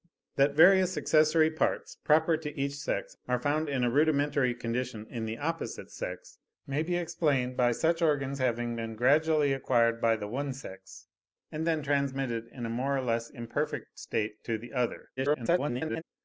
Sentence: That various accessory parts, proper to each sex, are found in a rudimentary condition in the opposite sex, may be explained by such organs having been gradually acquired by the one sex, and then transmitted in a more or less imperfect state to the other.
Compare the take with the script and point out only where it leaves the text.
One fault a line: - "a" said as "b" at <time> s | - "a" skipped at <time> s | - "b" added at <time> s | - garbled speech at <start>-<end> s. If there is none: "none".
- garbled speech at 15.2-16.0 s